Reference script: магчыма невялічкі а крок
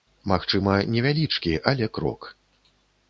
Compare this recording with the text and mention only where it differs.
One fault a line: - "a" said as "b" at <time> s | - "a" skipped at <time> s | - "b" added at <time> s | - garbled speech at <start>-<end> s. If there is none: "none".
- "а" said as "але" at 1.7 s